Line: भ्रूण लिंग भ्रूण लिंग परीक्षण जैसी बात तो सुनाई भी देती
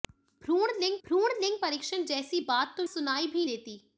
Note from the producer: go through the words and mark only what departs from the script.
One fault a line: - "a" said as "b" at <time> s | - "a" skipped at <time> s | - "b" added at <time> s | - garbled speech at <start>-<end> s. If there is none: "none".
none